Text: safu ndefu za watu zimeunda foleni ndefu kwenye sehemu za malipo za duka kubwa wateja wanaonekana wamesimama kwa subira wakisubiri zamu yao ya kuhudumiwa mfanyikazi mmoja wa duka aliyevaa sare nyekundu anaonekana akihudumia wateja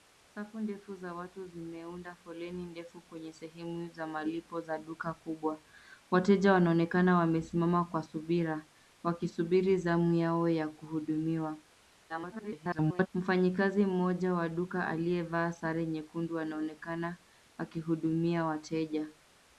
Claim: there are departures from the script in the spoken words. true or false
true